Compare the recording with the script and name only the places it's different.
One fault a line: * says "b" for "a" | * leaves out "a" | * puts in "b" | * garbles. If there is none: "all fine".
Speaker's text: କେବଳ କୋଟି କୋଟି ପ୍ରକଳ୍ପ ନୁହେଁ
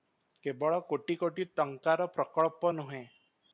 * puts in "ଟଙ୍କାର"